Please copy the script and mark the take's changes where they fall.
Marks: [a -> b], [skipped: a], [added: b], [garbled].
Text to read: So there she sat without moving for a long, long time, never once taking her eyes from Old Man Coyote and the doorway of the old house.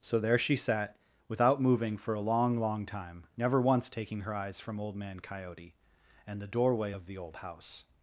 So there she sat without moving for a long, long time, never once taking her eyes from Old Man Coyote and the doorway of the old house.